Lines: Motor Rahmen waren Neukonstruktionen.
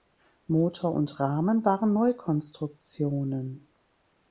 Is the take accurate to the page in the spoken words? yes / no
no